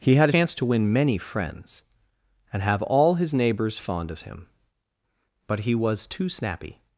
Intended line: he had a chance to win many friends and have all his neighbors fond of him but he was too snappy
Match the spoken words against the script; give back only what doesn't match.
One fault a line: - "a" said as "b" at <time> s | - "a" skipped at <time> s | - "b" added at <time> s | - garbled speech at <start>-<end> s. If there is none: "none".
- "a" skipped at 0.3 s